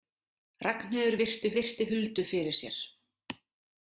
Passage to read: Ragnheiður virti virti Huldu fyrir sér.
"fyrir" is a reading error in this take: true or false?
false